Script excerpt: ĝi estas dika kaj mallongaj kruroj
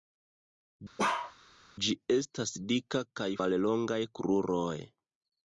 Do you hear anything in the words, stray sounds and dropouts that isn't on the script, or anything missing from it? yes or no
yes